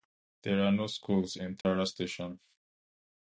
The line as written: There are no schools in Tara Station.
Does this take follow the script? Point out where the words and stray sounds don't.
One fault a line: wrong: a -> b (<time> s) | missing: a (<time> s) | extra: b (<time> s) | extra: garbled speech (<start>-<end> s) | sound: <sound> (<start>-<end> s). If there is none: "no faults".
sound: dropout (1.6-1.6 s)